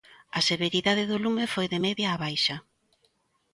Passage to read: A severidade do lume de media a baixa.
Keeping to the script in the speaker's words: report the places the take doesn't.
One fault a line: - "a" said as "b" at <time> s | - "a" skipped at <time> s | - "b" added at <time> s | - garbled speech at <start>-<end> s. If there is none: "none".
- "foi" added at 1.5 s